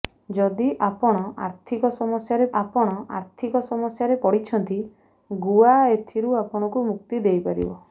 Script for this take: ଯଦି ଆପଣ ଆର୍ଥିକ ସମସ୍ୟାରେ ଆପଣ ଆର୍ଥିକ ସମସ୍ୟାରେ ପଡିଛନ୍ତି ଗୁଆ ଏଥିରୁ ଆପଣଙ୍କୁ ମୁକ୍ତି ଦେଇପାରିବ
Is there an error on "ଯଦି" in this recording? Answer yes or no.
no